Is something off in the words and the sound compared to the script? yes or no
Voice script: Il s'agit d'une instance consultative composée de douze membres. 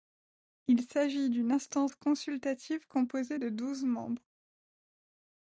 no